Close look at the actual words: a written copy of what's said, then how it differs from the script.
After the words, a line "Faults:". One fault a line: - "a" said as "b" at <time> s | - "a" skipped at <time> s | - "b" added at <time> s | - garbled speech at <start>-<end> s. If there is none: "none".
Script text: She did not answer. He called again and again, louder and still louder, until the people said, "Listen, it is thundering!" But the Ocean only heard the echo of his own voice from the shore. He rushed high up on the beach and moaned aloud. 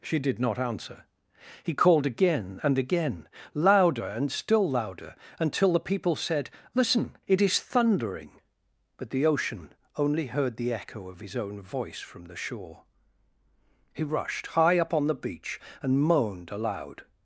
She did not answer. He called again and again, louder and still louder, until the people said, "Listen, it is thundering!" But the Ocean only heard the echo of his own voice from the shore. He rushed high up on the beach and moaned aloud.
Faults:
none